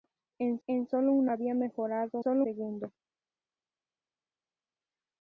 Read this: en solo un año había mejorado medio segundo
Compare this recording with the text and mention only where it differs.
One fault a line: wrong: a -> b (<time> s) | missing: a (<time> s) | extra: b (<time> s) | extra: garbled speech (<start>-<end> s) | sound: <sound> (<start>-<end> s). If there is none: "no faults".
extra: en (0.7 s)
missing: año (1.3 s)
wrong: medio -> solo (2.2 s)